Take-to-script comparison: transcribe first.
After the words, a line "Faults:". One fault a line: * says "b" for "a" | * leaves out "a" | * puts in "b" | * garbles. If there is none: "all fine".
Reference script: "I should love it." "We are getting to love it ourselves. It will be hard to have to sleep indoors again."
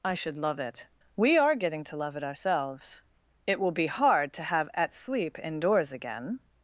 "I should love it." "We are getting to love it ourselves. It will be hard to have at sleep indoors again."
Faults:
* says "at" for "to"